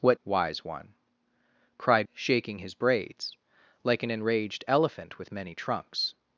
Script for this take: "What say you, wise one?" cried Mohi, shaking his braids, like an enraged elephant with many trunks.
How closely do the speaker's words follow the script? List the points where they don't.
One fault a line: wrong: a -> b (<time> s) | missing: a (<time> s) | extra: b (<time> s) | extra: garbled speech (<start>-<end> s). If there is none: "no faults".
missing: say you (0.2 s)
missing: Mohi (2.1 s)